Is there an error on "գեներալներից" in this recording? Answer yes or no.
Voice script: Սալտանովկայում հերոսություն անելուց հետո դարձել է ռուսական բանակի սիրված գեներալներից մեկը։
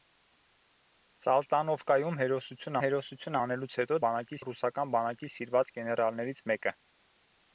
no